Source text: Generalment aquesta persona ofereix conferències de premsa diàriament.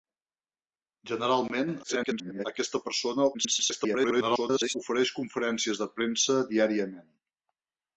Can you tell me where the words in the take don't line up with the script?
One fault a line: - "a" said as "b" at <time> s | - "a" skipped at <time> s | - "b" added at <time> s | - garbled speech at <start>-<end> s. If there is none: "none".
- garbled speech at 1.8-2.5 s
- garbled speech at 3.3-4.8 s